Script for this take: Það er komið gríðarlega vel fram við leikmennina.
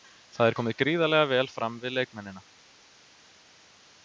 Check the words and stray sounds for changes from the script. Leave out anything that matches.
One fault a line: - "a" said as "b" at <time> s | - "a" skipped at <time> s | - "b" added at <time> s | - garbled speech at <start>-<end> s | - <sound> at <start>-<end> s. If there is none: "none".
none